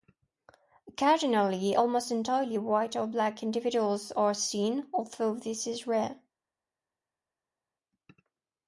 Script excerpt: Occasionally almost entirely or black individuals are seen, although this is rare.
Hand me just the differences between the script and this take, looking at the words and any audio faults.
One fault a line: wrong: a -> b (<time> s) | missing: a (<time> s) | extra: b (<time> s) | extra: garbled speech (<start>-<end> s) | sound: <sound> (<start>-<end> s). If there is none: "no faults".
extra: white (2.6 s)